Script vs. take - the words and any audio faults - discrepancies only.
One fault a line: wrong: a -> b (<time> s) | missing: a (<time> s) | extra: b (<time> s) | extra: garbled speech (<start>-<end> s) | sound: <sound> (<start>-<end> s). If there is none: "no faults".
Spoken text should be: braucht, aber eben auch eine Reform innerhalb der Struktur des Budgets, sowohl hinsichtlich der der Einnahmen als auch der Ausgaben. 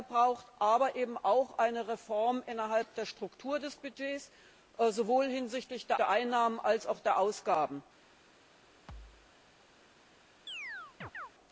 sound: thud (8.9-9.3 s)
sound: chirp (10.5-11.3 s)